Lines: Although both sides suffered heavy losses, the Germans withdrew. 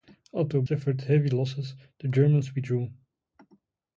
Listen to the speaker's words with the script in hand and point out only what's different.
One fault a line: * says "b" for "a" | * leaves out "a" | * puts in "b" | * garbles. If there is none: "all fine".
* leaves out "both sides"